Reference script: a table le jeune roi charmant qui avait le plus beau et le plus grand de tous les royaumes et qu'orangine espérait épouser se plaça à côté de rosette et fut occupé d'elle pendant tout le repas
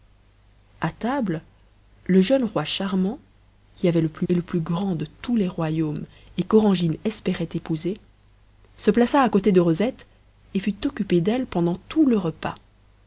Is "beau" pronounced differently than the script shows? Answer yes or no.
yes